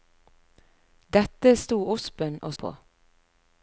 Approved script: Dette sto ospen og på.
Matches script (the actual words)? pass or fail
pass